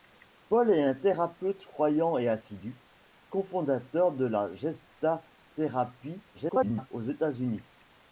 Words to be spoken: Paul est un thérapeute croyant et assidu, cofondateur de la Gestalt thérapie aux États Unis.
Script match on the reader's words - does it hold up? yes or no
no